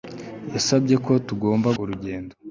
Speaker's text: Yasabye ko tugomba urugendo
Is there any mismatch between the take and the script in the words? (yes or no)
no